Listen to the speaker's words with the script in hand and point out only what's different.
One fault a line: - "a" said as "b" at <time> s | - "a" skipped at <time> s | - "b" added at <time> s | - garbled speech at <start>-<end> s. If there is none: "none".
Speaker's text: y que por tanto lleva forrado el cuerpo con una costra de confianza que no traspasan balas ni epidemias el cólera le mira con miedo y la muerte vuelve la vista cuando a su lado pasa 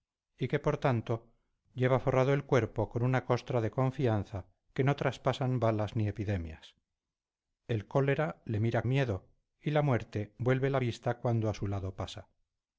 - "con" skipped at 8.8 s